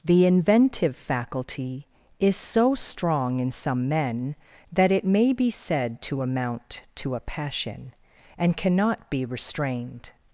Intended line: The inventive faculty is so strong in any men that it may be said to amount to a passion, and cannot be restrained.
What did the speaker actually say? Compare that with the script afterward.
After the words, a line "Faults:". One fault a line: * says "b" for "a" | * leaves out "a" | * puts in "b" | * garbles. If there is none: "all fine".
The inventive faculty is so strong in some men that it may be said to amount to a passion, and cannot be restrained.
Faults:
* says "some" for "any"